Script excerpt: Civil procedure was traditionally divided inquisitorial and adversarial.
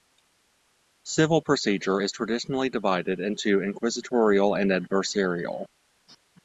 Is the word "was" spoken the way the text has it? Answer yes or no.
no